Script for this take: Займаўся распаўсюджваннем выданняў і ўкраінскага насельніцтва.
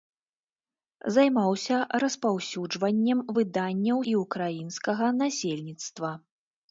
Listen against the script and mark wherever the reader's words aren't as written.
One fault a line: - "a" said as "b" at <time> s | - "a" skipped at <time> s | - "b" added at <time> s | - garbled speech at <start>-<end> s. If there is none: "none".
none